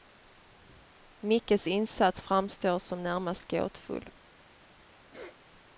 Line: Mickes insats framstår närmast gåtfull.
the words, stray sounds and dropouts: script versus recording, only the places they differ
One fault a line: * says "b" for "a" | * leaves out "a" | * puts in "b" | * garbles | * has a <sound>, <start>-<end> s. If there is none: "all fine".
* puts in "som"
* has a sneeze, 5.1-5.4 s